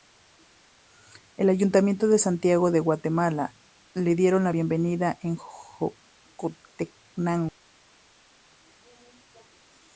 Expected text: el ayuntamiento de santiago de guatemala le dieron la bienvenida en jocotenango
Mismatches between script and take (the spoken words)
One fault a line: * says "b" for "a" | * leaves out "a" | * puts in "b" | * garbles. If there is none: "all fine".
all fine